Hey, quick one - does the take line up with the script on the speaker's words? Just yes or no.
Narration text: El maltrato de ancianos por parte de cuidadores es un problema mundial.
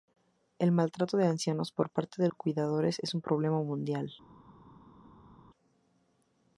yes